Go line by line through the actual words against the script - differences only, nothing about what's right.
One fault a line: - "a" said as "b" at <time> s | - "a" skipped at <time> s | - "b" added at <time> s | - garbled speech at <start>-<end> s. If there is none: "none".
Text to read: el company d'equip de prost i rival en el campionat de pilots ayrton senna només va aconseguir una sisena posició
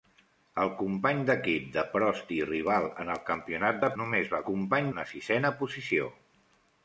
- "pilots ayrton senna" skipped at 3.9 s
- "aconseguir" said as "company" at 4.4 s